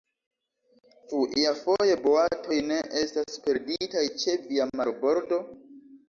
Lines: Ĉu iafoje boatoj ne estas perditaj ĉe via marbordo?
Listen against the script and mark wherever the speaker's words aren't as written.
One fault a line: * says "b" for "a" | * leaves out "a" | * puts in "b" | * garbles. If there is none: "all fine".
all fine